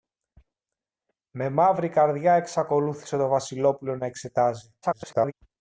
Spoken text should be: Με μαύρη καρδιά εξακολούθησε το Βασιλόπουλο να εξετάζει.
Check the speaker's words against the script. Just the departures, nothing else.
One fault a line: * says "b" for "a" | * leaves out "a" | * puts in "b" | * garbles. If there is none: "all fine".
* garbles